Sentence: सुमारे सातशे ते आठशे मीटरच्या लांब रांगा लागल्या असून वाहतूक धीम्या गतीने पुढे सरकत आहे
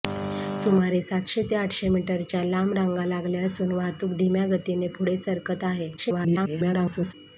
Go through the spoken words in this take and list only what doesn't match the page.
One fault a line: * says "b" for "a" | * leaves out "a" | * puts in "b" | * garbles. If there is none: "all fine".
* garbles